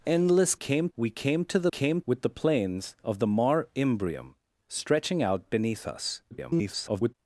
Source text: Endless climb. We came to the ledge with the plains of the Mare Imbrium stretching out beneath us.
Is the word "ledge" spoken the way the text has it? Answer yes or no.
no